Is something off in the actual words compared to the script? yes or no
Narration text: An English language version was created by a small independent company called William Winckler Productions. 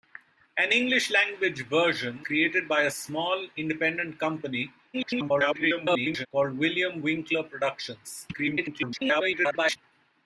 yes